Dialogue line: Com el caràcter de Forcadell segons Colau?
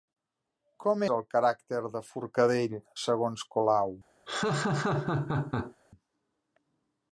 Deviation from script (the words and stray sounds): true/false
true